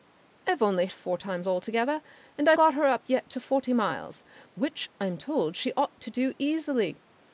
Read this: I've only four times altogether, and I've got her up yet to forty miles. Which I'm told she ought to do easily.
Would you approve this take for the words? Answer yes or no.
yes